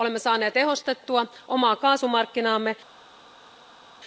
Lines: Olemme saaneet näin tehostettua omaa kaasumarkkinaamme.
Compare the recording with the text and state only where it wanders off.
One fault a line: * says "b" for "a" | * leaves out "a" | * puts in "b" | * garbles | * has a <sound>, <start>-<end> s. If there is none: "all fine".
* leaves out "näin"